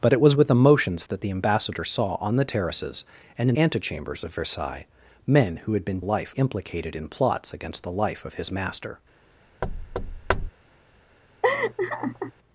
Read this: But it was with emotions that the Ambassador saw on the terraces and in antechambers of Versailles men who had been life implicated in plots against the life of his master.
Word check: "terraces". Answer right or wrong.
right